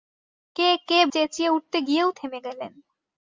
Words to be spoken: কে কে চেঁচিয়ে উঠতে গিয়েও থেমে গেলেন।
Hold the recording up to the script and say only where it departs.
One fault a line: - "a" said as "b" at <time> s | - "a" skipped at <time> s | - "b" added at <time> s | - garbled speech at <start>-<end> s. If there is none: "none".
none